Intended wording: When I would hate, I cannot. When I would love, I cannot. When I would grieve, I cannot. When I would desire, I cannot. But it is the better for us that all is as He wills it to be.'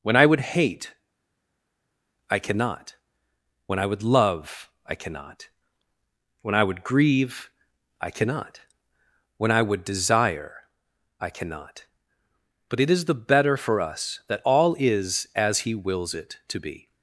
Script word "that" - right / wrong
right